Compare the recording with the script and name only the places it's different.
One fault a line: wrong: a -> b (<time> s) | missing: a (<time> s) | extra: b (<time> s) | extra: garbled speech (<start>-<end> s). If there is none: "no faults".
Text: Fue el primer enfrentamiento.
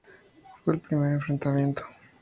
no faults